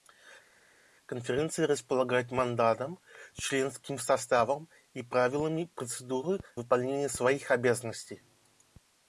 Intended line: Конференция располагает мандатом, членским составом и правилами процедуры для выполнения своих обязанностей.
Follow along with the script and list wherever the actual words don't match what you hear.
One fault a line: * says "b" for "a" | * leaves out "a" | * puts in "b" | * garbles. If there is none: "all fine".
* leaves out "для"